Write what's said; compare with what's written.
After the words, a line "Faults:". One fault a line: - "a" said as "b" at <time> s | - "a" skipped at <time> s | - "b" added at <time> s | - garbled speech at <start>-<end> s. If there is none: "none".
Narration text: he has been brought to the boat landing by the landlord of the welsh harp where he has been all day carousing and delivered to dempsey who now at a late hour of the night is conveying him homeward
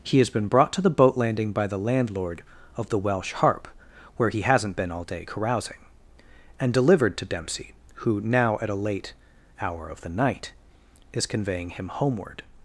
he has been brought to the boat landing by the landlord of the welsh harp where he hasn't been all day carousing and delivered to dempsey who now at a late hour of the night is conveying him homeward
Faults:
- "has" said as "hasn't" at 4.4 s